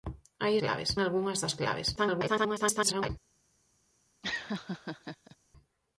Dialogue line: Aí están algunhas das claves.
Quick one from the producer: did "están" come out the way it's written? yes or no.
no